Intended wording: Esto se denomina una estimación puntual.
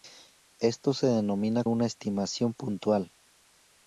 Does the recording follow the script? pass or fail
pass